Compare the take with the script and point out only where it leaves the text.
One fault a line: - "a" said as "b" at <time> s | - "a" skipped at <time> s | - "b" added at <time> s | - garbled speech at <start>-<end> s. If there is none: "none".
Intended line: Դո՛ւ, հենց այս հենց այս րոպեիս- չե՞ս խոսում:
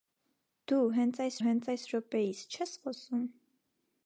none